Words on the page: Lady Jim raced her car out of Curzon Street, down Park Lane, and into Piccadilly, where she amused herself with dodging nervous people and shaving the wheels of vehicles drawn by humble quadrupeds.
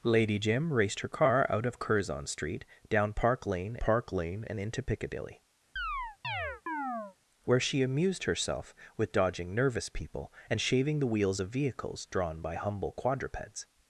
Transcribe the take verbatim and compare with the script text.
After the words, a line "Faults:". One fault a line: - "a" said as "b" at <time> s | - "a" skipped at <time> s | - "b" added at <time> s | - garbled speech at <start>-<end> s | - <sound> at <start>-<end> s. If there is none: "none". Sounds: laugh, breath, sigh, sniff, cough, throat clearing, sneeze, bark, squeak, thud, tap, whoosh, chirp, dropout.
Lady Jim raced her car out of Curzon Street, down Park Lane Park Lane, and into Piccadilly, where she amused herself with dodging nervous people and shaving the wheels of vehicles drawn by humble quadrupeds.
Faults:
- "Park Lane" added at 3.8 s
- chirp at 5.8-7.2 s